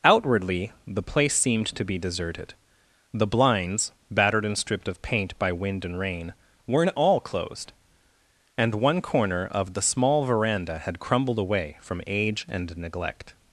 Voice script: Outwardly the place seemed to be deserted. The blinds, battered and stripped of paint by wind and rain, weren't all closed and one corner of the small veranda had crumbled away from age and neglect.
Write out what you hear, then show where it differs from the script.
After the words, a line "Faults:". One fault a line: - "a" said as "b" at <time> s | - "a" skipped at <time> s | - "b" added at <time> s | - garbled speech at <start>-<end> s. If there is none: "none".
Outwardly the place seemed to be deserted. The blinds, battered and stripped of paint by wind and rain, weren't all closed and one corner of the small veranda had crumbled away from age and neglect.
Faults:
none